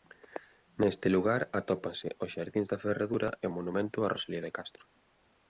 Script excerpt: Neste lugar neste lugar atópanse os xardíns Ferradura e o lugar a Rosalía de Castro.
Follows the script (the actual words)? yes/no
no